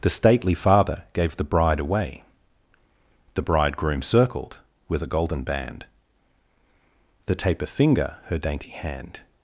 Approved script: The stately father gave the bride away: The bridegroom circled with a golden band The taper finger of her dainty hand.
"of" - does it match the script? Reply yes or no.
no